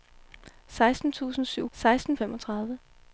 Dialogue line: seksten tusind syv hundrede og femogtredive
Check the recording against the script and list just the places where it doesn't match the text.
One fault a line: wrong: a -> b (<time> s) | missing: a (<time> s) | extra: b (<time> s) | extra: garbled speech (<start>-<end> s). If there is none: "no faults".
wrong: hundrede -> seksten (1.7 s)